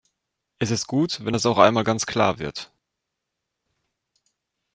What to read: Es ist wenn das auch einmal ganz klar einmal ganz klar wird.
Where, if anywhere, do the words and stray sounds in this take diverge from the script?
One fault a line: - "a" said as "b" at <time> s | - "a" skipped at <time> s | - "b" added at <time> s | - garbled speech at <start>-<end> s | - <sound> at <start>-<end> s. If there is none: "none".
- "gut" added at 0.9 s
- "einmal ganz klar" skipped at 2.4 s